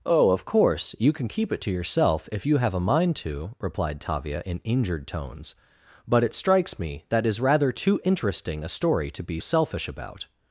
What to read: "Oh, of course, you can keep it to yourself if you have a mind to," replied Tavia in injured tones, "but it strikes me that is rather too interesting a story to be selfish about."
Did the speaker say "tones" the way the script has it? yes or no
yes